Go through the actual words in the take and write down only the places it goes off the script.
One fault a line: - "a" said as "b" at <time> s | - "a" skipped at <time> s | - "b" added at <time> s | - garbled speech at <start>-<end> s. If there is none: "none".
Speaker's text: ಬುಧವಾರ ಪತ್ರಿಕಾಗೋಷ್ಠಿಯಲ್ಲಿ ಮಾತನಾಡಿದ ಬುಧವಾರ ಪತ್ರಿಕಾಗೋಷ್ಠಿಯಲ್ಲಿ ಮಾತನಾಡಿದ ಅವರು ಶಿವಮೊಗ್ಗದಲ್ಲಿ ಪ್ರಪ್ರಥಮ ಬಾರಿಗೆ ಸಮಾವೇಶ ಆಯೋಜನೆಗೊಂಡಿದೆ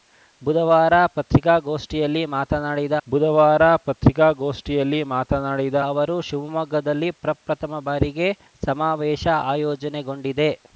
none